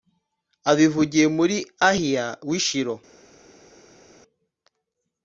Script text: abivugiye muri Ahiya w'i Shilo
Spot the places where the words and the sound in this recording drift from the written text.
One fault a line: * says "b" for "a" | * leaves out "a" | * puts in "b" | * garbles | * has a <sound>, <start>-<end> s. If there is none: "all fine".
all fine